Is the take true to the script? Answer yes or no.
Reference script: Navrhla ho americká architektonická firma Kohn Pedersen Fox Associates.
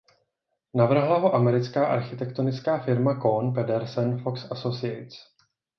yes